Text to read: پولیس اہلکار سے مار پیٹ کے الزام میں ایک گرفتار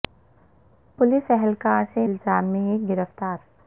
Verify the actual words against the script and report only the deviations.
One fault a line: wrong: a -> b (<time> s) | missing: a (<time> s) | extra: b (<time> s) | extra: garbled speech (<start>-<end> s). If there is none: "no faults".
missing: مار پیٹ کے (2.1 s)